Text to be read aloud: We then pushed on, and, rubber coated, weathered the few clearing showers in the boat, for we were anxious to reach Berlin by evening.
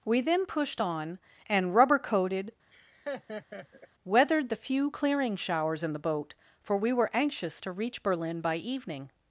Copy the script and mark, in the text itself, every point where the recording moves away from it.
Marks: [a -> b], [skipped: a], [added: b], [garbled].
We then pushed on, and, rubber coated, weathered the few clearing showers in the boat, for we were anxious to reach Berlin by evening.